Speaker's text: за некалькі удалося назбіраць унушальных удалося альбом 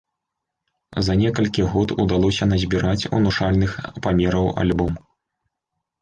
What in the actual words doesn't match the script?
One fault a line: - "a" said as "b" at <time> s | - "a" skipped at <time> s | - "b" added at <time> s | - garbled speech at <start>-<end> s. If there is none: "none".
- "год" added at 1.7 s
- "удалося" said as "памераў" at 4.1 s